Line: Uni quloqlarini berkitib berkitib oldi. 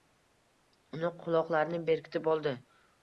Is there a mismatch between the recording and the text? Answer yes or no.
yes